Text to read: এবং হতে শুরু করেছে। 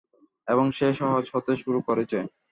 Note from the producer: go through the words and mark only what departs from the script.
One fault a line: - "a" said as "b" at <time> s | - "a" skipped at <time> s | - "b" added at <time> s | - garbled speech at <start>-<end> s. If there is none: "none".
- "সে সহজ" added at 0.7 s